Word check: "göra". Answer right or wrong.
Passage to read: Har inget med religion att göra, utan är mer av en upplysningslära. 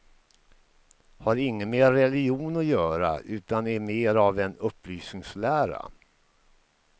right